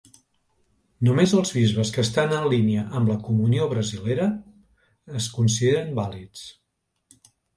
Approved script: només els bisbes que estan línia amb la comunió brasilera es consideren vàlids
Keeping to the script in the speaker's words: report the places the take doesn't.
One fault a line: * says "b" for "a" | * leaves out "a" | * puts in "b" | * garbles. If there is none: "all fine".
* puts in "en"